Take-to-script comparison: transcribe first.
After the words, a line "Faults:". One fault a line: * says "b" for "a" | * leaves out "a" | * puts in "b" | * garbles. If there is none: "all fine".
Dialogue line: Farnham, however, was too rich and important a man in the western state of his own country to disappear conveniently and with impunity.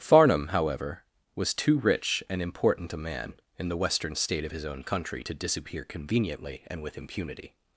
Farnham, however, was too rich and important a man in the western state of his own country to disappear conveniently and with impunity.
Faults:
all fine